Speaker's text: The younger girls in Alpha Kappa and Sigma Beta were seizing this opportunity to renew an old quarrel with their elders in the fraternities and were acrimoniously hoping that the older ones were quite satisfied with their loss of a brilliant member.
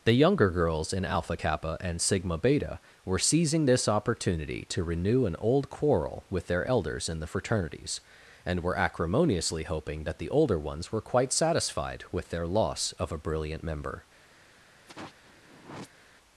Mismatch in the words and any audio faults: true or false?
true